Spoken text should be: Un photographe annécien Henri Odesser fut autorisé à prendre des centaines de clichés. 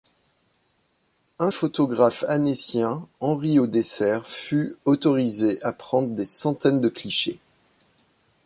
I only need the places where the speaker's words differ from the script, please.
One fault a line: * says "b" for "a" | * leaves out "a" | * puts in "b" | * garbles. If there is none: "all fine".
all fine